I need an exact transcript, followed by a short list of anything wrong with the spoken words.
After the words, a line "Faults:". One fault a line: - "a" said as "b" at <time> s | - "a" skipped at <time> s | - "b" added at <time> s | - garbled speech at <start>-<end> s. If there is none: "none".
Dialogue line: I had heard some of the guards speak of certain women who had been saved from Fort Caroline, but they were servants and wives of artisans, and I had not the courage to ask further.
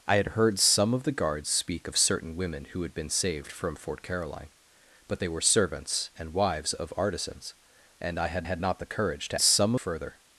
I had heard some of the guards speak of certain women who had been saved from Fort Caroline, but they were servants and wives of artisans, and I had had not the courage to some further.
Faults:
- "had" added at 8.4 s
- "ask" said as "some" at 9.4 s